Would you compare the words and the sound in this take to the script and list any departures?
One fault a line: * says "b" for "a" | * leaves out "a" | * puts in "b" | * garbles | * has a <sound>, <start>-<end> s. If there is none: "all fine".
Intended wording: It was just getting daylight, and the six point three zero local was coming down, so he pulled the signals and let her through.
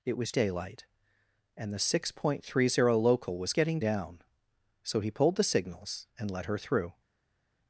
* leaves out "just getting"
* says "getting" for "coming"